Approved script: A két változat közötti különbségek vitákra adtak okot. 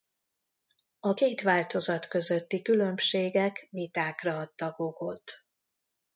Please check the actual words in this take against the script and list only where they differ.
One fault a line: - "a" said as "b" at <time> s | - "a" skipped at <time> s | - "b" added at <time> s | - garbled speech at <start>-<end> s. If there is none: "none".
none